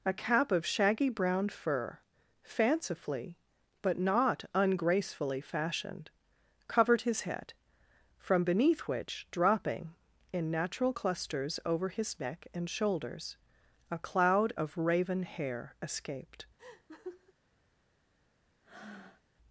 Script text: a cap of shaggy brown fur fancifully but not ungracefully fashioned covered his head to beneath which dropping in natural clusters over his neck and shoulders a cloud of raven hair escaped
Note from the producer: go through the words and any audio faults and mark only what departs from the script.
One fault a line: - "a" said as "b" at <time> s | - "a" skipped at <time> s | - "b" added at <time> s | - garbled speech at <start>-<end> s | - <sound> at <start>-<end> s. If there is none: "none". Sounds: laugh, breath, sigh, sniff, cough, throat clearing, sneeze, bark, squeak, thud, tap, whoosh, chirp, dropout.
- "to" said as "from" at 8.2 s
- laugh at 16.6-17.3 s
- breath at 18.6-19.2 s